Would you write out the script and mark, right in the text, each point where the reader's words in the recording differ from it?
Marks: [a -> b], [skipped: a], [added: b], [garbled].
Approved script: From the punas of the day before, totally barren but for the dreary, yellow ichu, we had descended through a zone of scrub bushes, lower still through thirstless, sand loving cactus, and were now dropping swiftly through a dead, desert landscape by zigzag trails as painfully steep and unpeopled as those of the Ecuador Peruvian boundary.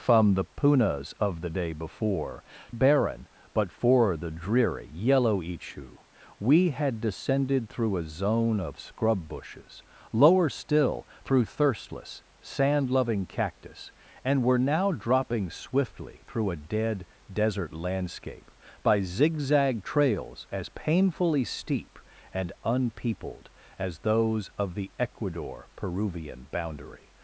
From the punas of the day before, [skipped: totally] barren but for the dreary, yellow ichu, we had descended through a zone of scrub bushes, lower still through thirstless, sand loving cactus, and were now dropping swiftly through a dead, desert landscape by zigzag trails as painfully steep and unpeopled as those of the Ecuador Peruvian boundary.